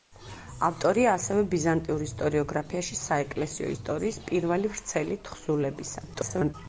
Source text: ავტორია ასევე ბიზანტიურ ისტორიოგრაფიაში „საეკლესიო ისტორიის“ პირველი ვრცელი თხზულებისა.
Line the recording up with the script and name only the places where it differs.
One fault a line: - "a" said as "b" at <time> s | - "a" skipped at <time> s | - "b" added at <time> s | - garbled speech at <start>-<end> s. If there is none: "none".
- garbled speech at 6.1-6.5 s